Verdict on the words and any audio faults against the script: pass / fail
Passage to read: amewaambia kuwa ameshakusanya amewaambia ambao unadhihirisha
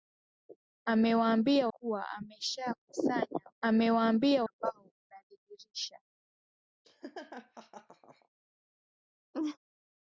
fail